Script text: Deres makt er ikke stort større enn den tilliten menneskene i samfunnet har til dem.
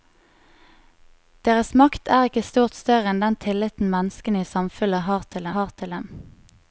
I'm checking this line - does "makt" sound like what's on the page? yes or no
yes